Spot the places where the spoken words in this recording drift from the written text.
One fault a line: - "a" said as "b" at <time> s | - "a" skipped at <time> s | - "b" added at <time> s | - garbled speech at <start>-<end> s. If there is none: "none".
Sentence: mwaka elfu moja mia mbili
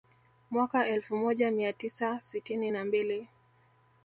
- "tisa sitini na" added at 1.7 s